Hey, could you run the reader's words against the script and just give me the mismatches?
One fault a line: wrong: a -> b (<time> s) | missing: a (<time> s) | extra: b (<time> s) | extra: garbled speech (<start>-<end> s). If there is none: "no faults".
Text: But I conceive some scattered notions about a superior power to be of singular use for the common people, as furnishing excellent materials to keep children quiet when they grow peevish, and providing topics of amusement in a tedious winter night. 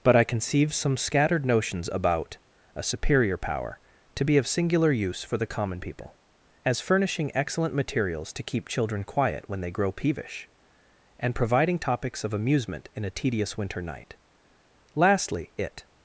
extra: Lastly it (14.9 s)